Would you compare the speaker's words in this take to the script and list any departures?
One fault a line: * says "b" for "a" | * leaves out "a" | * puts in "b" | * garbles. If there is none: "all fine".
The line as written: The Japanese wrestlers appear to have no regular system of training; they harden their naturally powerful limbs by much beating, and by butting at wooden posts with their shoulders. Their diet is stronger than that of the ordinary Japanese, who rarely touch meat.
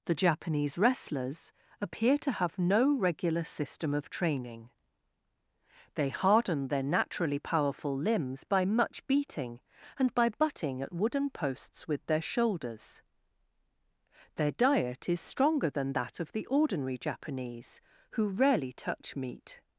all fine